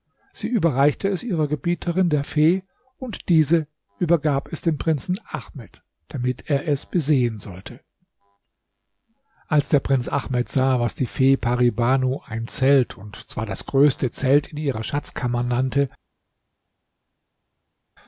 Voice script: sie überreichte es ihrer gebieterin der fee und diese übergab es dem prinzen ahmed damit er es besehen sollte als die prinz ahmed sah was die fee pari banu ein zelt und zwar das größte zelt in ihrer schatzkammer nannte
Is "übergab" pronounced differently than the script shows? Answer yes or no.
no